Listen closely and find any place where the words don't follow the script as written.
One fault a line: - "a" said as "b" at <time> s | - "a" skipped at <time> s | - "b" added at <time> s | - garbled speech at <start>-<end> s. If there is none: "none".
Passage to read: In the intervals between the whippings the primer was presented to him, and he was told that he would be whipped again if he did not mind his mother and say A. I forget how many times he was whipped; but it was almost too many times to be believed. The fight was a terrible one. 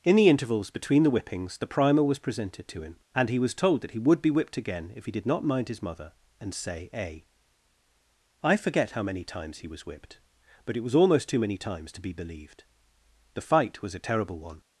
none